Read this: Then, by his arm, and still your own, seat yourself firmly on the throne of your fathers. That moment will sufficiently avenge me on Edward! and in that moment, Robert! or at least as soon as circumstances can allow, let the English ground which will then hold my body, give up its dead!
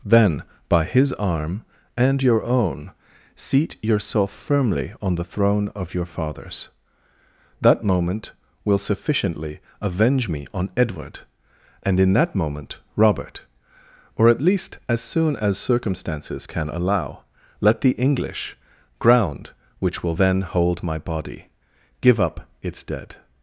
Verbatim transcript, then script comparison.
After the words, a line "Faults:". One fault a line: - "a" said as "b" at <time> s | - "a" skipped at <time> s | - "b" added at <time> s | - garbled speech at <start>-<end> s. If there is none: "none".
Then, by his arm, and your own, seat yourself firmly on the throne of your fathers. That moment will sufficiently avenge me on Edward! and in that moment, Robert! or at least as soon as circumstances can allow, let the English ground which will then hold my body, give up its dead!
Faults:
- "still" skipped at 2.2 s